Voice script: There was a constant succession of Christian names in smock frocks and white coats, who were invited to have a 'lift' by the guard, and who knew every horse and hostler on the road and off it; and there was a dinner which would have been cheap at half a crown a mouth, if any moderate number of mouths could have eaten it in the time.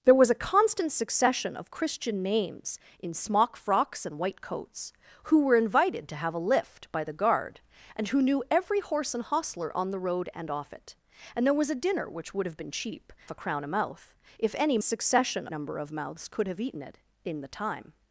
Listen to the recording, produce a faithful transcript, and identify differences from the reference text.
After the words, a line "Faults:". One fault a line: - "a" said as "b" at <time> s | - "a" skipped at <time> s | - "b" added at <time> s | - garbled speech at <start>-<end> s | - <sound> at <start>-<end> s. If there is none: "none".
There was a constant succession of Christian names in smock frocks and white coats, who were invited to have a 'lift' by the guard, and who knew every horse and hostler on the road and off it; and there was a dinner which would have been cheap a crown a mouth, if any succession number of mouths could have eaten it in the time.
Faults:
- "at half" skipped at 13.1 s
- "moderate" said as "succession" at 14.8 s